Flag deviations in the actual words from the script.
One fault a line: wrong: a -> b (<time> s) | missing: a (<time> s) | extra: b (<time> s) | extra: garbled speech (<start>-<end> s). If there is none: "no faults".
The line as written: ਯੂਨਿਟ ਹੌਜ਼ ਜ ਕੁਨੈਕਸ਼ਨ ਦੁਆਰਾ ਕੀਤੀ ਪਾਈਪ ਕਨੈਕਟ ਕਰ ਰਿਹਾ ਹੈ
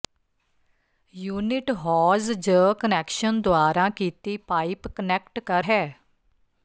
missing: ਰਿਹਾ (5.6 s)